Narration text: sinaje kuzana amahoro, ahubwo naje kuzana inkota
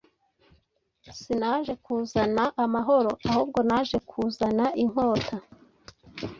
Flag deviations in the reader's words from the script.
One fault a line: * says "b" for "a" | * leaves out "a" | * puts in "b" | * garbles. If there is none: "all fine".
all fine